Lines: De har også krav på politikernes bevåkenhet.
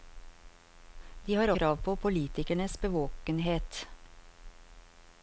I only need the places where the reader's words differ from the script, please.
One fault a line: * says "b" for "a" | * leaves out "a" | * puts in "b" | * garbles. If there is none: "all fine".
* leaves out "også"